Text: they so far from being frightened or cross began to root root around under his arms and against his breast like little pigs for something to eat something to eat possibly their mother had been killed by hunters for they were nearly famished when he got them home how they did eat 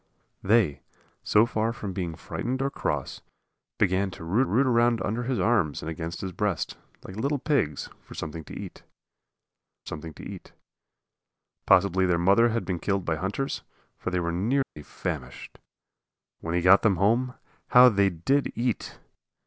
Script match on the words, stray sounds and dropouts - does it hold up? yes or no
no